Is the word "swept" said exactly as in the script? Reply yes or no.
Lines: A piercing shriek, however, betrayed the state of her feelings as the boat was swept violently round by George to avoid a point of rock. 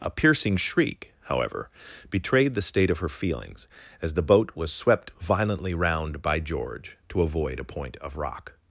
yes